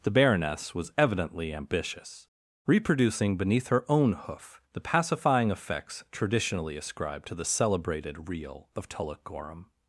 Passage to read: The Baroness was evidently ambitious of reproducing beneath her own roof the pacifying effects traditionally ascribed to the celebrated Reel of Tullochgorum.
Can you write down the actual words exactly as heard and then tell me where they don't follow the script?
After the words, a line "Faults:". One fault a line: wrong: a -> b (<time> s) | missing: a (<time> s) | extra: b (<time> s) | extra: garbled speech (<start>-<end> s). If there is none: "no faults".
The Baroness was evidently ambitious reproducing beneath her own hoof the pacifying effects traditionally ascribed to the celebrated Reel of Tullochgorum.
Faults:
missing: of (2.3 s)
wrong: roof -> hoof (4.1 s)